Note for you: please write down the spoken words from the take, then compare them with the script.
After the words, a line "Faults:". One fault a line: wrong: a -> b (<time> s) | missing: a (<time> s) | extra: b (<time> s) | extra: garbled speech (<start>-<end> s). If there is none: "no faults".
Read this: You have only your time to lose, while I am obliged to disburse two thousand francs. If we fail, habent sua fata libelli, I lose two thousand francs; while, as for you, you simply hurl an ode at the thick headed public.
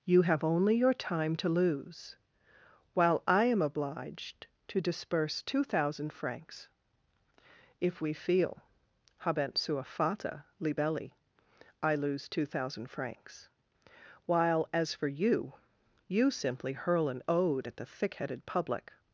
You have only your time to lose, while I am obliged to disburse two thousand francs. If we feel, habent sua fata libelli, I lose two thousand francs; while, as for you, you simply hurl an ode at the thick headed public.
Faults:
wrong: fail -> feel (8.1 s)